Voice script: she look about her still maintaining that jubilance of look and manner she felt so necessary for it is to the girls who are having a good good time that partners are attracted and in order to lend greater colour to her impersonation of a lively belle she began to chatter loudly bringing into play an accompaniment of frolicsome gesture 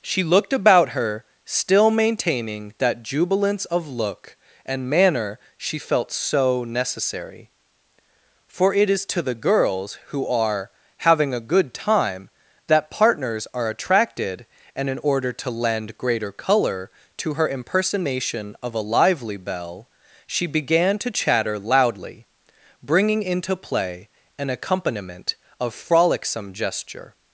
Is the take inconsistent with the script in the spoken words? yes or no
yes